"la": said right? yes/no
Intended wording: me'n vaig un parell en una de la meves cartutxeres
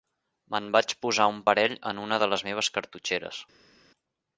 no